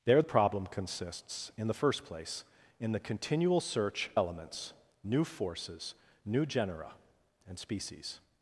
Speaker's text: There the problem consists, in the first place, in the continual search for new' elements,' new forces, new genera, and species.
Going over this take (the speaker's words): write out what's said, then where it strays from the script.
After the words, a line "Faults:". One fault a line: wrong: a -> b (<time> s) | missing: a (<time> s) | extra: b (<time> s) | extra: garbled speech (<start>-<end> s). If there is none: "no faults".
There problem consists, in the first place, in the continual search' elements,' new forces, new genera, and species.
Faults:
missing: the (0.2 s)
missing: for new (4.1 s)